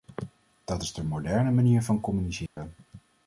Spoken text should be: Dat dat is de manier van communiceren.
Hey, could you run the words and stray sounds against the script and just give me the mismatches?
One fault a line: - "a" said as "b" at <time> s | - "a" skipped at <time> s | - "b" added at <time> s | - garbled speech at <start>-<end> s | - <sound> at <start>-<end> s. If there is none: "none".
- "dat" skipped at 0.8 s
- "moderne" added at 1.0 s
- dropout at 2.5-2.6 s